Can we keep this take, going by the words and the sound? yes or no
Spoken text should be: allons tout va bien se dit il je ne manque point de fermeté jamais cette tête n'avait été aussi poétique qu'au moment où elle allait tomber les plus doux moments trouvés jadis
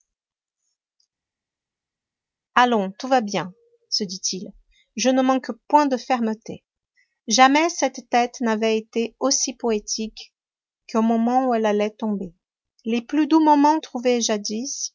yes